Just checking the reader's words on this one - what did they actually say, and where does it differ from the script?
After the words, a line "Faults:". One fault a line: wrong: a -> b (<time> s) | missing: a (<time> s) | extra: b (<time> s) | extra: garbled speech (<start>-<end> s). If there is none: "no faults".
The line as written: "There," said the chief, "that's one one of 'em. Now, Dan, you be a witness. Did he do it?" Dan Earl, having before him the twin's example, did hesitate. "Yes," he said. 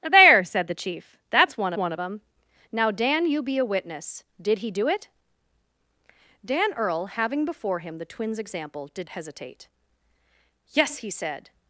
"There," said the chief, "that's one one of 'em. Now, Dan, you be a witness. Did he do it?" Dan Earl, having before him the twin's example, did hesitate. "Yes," he said.
Faults:
no faults